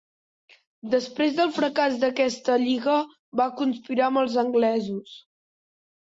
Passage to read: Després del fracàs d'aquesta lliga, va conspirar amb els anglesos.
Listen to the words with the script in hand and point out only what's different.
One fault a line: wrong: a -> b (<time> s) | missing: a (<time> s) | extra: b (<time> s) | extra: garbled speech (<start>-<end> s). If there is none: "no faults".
no faults